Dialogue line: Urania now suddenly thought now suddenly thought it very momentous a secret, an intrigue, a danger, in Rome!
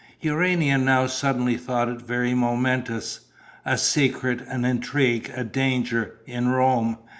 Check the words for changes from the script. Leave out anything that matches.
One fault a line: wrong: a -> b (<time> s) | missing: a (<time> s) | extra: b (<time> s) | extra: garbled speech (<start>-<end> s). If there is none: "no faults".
missing: now suddenly thought (1.9 s)